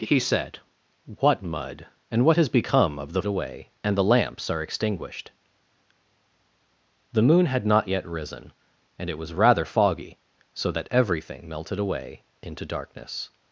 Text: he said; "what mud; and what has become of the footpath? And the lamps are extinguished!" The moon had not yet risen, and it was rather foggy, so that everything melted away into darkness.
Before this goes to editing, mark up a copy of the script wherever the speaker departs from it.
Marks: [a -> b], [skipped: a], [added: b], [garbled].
he said; "what mud; and what has become of the [footpath? -> away] And the lamps are extinguished!" The moon had not yet risen, and it was rather foggy, so that everything melted away into darkness.